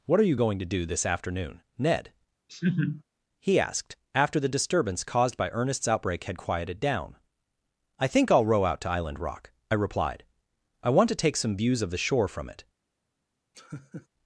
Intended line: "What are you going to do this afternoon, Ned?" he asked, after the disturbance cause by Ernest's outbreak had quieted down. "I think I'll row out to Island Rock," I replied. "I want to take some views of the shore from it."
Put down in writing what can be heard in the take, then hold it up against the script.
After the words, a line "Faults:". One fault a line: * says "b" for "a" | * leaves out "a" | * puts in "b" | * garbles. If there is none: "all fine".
"What are you going to do this afternoon, Ned?" he asked, after the disturbance caused by Ernest's outbreak had quieted down. "I think I'll row out to Island Rock," I replied. "I want to take some views of the shore from it."
Faults:
* says "caused" for "cause"